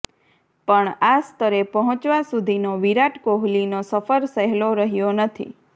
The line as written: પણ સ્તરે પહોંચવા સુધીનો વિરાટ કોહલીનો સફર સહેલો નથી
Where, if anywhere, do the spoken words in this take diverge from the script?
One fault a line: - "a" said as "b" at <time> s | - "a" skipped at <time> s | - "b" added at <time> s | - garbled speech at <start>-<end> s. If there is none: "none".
- "આ" added at 1.1 s
- "રહ્યો" added at 4.8 s